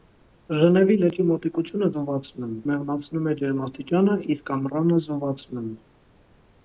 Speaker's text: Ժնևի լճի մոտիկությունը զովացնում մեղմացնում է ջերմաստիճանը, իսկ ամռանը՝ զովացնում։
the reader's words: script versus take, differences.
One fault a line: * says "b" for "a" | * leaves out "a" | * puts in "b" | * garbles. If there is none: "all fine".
all fine